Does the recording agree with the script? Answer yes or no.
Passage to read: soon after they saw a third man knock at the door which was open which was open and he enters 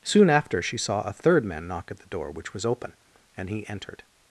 no